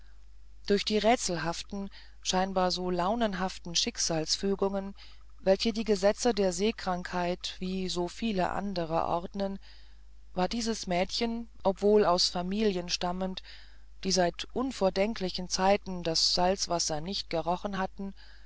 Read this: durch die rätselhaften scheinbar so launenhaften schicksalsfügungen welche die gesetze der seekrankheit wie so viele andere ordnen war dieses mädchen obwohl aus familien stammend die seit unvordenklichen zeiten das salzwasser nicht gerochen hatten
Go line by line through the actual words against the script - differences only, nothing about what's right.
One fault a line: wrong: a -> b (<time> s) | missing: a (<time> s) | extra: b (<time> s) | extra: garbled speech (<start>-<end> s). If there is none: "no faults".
no faults